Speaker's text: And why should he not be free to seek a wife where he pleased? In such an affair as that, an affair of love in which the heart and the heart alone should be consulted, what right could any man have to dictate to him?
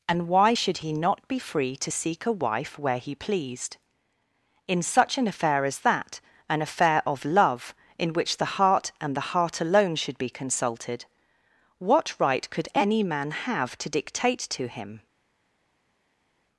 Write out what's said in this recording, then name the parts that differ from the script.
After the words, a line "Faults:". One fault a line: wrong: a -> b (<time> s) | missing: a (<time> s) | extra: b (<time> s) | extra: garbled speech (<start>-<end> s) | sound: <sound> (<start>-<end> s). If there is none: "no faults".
And why should he not be free to seek a wife where he pleased? In such an affair as that, an affair of love in which the heart and the heart alone should be consulted, what right could any man have to dictate to him?
Faults:
no faults